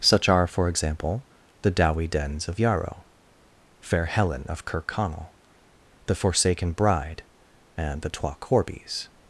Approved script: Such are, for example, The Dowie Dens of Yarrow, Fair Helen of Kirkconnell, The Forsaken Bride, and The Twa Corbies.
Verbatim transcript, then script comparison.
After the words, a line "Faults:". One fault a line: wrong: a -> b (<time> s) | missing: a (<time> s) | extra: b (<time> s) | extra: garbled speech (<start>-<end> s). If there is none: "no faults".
Such are, for example, The Dowie Dens of Yarrow, Fair Helen of Kirkconnell, The Forsaken Bride, and The Twa Corbies.
Faults:
no faults